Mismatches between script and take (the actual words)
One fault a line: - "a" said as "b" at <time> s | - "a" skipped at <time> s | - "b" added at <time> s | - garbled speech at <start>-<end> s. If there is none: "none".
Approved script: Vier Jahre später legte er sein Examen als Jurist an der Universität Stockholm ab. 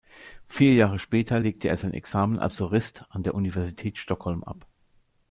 none